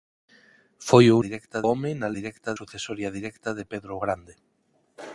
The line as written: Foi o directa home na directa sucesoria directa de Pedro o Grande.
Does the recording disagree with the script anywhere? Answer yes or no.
no